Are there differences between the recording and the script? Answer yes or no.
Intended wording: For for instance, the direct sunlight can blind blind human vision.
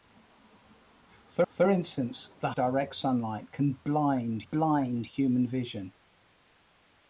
no